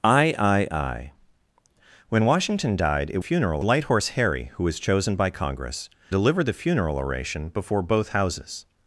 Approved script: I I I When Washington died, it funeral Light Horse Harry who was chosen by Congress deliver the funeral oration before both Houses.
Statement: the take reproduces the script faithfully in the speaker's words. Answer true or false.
true